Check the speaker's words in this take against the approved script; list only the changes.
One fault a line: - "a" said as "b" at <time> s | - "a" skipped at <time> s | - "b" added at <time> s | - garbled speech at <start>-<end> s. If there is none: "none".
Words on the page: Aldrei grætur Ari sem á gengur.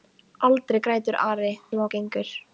none